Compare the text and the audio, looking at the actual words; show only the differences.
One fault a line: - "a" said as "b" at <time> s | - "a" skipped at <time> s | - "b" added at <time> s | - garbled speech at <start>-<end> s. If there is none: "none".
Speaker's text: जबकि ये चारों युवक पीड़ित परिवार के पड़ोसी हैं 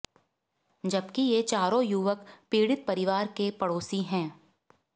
none